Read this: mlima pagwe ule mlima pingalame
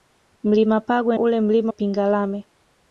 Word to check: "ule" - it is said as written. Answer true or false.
true